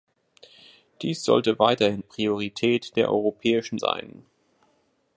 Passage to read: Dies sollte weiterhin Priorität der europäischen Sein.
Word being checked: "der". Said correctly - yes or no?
yes